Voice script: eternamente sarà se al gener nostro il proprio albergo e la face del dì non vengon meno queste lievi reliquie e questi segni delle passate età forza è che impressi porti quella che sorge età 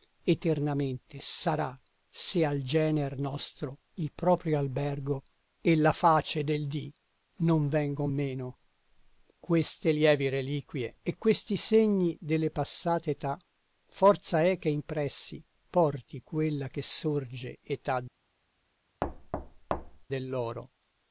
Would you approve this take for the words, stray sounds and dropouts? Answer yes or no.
no